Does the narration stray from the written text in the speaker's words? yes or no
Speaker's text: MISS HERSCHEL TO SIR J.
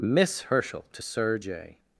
no